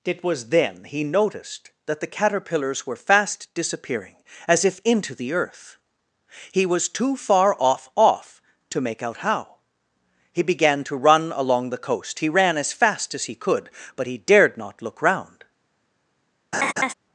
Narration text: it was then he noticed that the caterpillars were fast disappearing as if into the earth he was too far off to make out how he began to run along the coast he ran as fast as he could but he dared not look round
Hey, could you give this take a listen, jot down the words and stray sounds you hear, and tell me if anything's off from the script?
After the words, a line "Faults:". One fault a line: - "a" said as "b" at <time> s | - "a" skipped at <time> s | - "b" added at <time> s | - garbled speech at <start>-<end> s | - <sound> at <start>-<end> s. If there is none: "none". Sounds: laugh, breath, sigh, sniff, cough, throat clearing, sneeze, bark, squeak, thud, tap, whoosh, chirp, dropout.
it was then he noticed that the caterpillars were fast disappearing as if into the earth he was too far off off to make out how he began to run along the coast he ran as fast as he could but he dared not look round
Faults:
- "off" added at 8.0 s
- laugh at 16.5-16.9 s